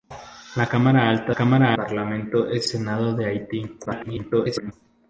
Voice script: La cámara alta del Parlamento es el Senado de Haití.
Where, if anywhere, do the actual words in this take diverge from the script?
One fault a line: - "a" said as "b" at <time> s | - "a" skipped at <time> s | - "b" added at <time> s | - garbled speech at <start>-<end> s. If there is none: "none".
- "del" said as "cámara" at 1.3 s
- "el" skipped at 2.7 s
- garbled speech at 3.9-4.7 s